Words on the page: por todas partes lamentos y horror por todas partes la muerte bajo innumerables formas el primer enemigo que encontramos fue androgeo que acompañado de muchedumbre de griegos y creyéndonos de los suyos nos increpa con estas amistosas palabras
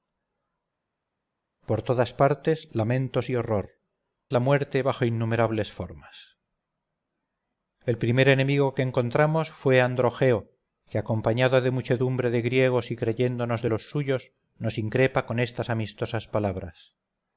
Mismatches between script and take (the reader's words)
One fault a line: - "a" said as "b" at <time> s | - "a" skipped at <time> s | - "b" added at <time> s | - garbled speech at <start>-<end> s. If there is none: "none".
- "por todas partes" skipped at 3.7 s